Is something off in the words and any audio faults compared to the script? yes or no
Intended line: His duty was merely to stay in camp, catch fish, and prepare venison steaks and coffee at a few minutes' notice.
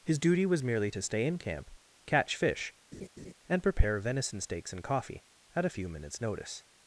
yes